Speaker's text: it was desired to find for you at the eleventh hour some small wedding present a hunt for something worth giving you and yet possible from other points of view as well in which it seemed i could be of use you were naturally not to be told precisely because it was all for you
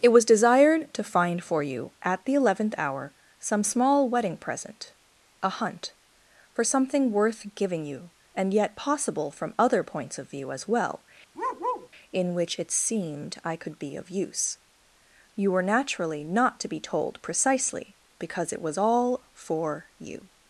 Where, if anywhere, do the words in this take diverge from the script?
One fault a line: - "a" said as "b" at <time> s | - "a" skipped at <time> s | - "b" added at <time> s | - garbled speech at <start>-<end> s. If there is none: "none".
none